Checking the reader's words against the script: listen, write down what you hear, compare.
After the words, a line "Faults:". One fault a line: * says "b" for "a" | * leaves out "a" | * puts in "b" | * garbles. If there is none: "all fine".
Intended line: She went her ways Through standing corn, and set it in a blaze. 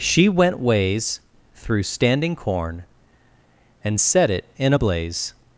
She went ways Through standing corn, and set it in a blaze.
Faults:
* leaves out "her"